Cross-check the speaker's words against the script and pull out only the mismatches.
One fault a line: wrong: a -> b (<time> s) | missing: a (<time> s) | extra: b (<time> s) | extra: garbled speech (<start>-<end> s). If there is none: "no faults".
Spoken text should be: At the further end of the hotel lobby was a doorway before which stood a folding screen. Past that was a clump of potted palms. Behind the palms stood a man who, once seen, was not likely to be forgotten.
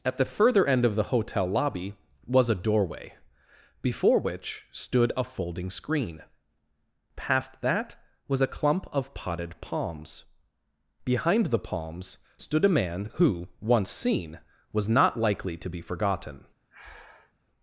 no faults